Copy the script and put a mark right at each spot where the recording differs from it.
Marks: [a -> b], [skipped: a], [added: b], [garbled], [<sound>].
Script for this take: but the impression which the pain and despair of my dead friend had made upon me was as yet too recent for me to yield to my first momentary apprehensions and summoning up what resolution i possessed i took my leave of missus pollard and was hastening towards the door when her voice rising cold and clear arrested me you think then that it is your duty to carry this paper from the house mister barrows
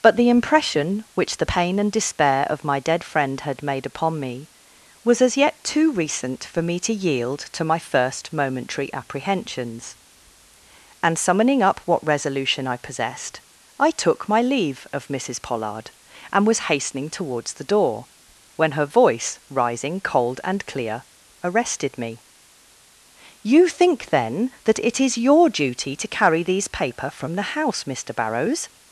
but the impression which the pain and despair of my dead friend had made upon me was as yet too recent for me to yield to my first momentary apprehensions and summoning up what resolution i possessed i took my leave of missus pollard and was hastening towards the door when her voice rising cold and clear arrested me you think then that it is your duty to carry [this -> these] paper from the house mister barrows